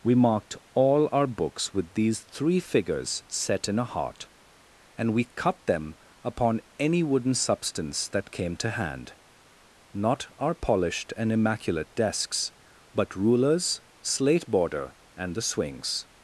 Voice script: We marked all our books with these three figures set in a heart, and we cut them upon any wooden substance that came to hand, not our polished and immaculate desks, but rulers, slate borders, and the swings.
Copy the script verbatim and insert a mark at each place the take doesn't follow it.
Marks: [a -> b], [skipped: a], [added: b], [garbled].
We marked all our books with these three figures set in a heart, and we cut them upon any wooden substance that came to hand, not our polished and immaculate desks, but rulers, slate [borders, -> border] and the swings.